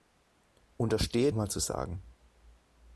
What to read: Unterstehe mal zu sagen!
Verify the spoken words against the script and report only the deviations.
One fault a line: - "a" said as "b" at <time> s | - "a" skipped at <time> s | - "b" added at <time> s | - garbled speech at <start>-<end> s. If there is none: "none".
none